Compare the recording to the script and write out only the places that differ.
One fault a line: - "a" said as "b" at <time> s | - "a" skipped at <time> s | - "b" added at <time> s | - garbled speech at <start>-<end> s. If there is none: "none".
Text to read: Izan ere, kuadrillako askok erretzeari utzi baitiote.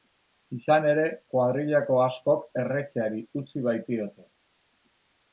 none